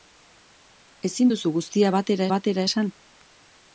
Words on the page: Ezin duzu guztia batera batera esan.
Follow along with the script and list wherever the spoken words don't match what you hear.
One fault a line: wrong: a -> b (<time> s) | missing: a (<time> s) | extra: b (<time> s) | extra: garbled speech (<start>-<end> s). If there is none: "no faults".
no faults